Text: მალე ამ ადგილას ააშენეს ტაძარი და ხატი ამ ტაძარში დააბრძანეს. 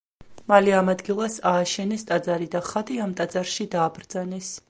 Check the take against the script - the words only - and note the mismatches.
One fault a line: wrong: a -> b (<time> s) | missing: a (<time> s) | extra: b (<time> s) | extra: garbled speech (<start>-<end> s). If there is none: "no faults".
no faults